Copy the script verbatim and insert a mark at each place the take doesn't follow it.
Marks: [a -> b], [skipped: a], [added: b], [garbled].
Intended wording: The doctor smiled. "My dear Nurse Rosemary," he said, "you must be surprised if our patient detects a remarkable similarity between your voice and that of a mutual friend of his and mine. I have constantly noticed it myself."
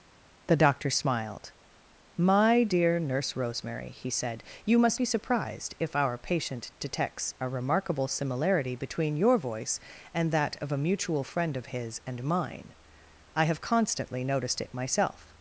The doctor smiled. "My dear Nurse Rosemary," he said, "you must be surprised if our patient detects a remarkable similarity between your voice and that of a mutual friend of his and mine. I have constantly noticed it myself."